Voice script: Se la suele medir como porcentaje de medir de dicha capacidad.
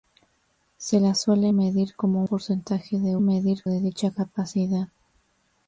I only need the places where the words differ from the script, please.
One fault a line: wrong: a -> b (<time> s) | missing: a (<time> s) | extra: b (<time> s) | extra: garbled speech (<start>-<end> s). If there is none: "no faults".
no faults